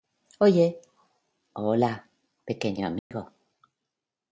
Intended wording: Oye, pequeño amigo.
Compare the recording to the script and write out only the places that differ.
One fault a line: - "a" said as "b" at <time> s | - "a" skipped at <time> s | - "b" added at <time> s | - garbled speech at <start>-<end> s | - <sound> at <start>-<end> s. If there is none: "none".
- "hola" added at 1.5 s
- dropout at 3.0-3.1 s